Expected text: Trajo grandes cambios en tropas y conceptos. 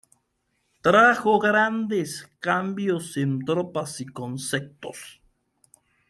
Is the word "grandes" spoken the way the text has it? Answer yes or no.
yes